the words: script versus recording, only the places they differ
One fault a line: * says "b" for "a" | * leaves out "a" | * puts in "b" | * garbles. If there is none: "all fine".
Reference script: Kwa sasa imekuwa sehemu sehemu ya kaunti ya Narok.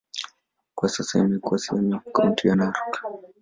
* leaves out "sehemu"